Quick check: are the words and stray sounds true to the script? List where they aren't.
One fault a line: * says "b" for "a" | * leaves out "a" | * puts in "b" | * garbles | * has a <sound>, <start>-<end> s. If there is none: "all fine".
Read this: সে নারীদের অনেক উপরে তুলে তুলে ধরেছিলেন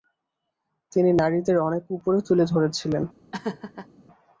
* says "তিনি" for "সে"
* leaves out "তুলে"
* has a laugh, 3.3-3.9 s